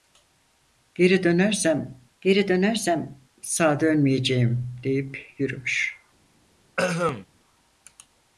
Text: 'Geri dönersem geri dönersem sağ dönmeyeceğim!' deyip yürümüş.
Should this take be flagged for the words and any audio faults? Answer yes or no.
yes